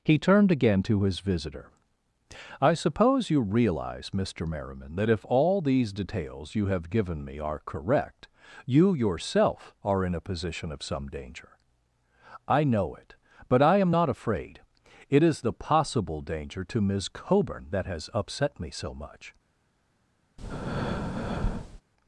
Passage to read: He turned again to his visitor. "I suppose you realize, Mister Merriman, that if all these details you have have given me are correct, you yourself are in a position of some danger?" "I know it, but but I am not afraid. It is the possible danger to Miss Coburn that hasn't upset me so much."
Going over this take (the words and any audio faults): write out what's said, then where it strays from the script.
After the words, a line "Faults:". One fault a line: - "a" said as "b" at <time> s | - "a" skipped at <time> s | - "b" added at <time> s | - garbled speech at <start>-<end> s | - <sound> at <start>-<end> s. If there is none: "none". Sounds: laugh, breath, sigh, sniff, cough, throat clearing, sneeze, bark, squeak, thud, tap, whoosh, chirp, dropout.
He turned again to his visitor. "I suppose you realize, Mister Merriman, that if all these details you have given me are correct, you yourself are in a position of some danger?" "I know it, but I am not afraid. It is the possible danger to Miss Coburn that has upset me so much."
Faults:
- "have" skipped at 6.9 s
- "but" skipped at 13.6 s
- "hasn't" said as "has" at 17.9 s
- breath at 20.4-21.8 s